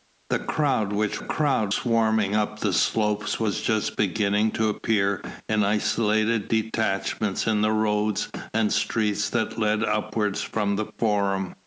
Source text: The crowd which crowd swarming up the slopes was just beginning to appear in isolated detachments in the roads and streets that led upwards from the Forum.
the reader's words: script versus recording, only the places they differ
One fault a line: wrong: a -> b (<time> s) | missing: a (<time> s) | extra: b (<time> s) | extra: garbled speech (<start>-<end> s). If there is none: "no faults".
no faults